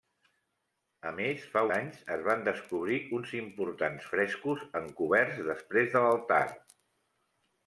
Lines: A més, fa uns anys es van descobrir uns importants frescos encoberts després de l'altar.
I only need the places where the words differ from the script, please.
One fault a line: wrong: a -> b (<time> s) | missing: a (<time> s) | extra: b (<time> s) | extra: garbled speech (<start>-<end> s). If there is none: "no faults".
missing: uns (1.6 s)